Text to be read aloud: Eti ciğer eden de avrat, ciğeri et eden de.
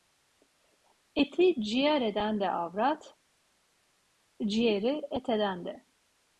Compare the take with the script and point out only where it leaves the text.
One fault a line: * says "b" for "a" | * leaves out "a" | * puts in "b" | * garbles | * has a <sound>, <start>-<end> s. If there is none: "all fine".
all fine